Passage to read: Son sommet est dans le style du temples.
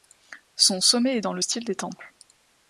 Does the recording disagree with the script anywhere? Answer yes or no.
yes